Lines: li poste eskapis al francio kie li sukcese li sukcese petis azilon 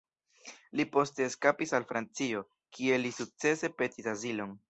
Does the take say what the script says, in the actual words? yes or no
no